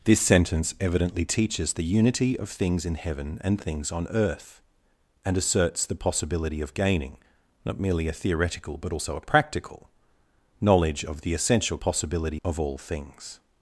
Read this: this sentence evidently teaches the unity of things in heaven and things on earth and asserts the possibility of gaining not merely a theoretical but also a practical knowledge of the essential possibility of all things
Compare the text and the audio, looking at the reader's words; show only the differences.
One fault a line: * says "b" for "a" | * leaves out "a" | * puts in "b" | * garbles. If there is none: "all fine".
all fine